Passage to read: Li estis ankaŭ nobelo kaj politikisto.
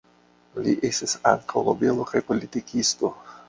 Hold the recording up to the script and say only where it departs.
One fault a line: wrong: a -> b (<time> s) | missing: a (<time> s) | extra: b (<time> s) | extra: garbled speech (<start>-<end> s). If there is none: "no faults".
no faults